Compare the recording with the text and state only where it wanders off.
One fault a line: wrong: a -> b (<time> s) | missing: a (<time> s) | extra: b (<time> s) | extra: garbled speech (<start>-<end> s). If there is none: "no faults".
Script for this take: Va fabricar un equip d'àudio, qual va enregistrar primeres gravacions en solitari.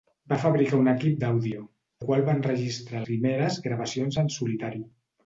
no faults